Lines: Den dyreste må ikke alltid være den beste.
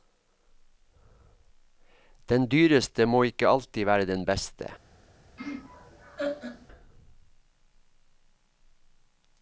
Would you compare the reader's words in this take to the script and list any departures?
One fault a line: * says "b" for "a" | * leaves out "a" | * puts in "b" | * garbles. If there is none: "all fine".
all fine